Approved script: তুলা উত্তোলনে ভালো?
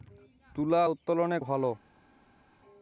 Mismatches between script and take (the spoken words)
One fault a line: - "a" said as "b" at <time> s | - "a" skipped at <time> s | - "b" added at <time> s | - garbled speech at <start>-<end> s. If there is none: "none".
none